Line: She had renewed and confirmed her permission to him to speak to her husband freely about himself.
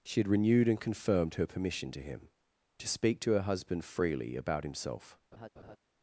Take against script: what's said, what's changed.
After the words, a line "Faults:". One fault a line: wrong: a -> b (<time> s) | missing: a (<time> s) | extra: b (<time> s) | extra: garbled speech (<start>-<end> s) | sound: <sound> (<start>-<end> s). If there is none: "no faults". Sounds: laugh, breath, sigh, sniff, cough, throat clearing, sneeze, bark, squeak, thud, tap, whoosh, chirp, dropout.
She had renewed and confirmed her permission to him to speak to her husband freely about himself.
Faults:
sound: laugh (5.3-5.8 s)